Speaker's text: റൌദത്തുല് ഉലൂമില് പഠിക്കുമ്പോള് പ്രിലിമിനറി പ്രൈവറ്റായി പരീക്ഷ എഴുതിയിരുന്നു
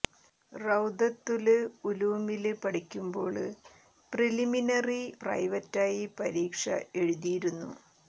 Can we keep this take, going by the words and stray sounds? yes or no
yes